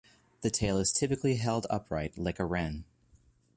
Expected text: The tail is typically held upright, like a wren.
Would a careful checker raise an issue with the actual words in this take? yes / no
no